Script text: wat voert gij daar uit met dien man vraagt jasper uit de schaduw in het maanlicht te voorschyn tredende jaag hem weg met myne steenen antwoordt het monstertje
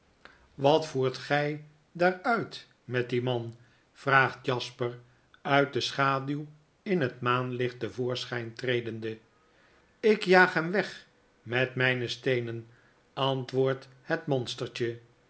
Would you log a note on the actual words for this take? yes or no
yes